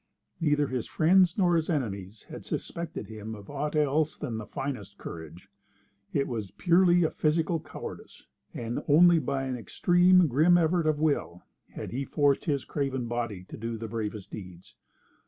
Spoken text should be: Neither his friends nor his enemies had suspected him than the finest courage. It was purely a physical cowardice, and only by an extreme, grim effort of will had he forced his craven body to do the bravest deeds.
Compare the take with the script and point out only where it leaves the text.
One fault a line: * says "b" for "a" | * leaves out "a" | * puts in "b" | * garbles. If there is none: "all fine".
* puts in "of aught else"